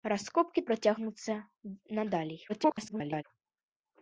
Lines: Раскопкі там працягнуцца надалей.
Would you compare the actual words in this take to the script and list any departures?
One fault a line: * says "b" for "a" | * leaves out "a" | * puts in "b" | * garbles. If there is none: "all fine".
* leaves out "там"
* garbles